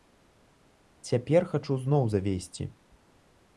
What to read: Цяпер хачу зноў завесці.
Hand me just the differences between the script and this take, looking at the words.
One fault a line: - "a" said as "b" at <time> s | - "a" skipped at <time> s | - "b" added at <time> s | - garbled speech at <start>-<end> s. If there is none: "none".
none